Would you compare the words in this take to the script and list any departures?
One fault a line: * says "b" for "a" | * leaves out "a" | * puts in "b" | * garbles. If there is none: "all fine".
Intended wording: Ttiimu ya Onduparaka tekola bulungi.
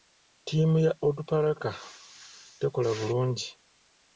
all fine